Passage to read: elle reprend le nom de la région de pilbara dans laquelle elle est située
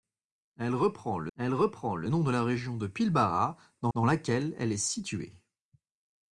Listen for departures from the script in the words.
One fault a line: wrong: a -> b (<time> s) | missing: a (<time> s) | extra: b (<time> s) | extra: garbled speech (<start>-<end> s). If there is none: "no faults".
extra: elle reprend le (1.4 s)
extra: dans (3.9 s)